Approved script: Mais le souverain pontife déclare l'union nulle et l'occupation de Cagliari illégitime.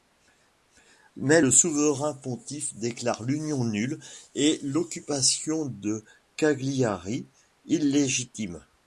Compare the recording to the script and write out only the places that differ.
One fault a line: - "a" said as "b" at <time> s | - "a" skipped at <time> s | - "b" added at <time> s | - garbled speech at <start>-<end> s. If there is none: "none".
none